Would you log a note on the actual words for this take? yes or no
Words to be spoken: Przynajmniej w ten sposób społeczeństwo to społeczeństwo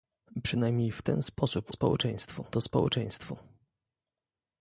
no